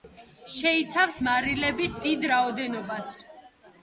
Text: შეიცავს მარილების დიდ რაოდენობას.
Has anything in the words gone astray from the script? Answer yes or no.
no